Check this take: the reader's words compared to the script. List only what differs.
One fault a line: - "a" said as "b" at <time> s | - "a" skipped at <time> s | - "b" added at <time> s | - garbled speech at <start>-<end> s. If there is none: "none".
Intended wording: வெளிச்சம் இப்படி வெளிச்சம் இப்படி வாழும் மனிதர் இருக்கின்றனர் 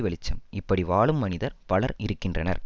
- "வெளிச்சம் இப்படி" skipped at 0.8 s
- "பலர்" added at 1.6 s